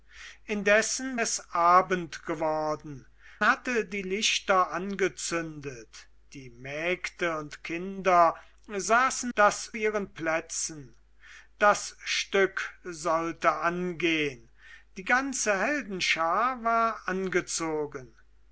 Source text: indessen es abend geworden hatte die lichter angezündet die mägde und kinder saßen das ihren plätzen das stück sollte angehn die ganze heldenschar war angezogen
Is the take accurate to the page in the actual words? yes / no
yes